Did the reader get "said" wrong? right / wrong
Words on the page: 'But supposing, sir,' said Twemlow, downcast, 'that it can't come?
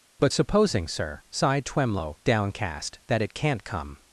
wrong